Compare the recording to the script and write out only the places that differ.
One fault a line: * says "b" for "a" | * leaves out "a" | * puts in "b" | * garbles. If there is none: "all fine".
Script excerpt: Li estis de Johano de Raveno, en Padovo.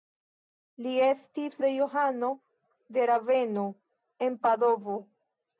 all fine